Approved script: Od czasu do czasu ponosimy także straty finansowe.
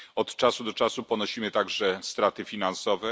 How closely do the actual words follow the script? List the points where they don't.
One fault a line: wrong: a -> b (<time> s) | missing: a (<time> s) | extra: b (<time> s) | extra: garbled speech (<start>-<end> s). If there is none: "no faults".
no faults